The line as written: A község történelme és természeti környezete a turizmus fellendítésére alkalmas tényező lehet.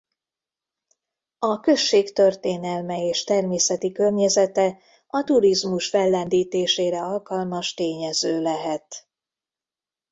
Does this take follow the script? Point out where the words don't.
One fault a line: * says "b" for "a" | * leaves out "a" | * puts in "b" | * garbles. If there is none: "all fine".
all fine